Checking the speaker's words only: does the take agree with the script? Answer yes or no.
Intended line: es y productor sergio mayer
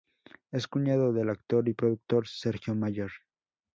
no